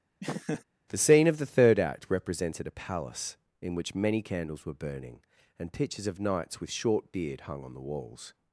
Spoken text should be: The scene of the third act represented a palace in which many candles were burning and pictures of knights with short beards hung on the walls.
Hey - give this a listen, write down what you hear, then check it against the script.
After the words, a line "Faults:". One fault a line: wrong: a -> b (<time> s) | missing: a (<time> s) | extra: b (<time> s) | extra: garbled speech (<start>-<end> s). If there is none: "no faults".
The scene of the third act represented a palace in which many candles were burning and pictures of knights with short beard hung on the walls.
Faults:
wrong: beards -> beard (7.1 s)